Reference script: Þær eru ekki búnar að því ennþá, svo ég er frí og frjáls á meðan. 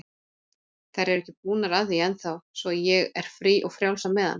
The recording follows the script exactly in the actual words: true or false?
true